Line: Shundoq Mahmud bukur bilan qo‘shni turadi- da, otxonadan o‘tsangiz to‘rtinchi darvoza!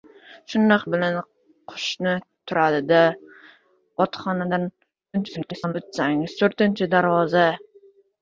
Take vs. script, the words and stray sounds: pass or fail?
fail